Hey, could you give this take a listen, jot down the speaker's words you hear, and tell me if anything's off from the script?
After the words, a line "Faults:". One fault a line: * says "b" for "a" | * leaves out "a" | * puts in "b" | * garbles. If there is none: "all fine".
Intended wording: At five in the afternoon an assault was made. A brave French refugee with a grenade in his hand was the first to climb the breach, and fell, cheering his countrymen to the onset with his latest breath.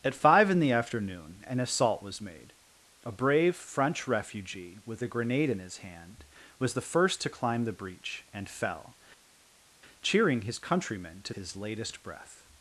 At five in the afternoon an assault was made. A brave French refugee with a grenade in his hand was the first to climb the breach, and fell, cheering his countrymen to his latest breath.
Faults:
* leaves out "the onset with"